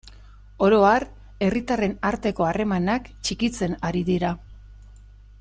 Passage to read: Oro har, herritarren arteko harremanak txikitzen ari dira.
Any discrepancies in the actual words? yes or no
no